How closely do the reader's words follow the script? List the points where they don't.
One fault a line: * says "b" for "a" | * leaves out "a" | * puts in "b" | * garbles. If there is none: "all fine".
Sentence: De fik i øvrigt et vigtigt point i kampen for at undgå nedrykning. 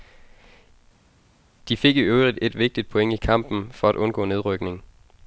all fine